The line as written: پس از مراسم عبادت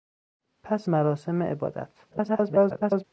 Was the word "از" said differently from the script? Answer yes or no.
yes